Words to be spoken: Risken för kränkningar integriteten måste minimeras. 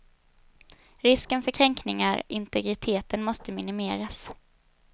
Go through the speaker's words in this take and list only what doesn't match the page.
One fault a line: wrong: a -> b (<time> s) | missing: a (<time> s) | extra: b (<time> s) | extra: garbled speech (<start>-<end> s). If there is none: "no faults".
no faults